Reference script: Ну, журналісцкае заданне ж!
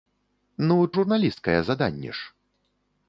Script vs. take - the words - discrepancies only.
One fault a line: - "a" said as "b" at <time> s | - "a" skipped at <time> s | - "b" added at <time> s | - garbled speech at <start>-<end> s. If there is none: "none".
none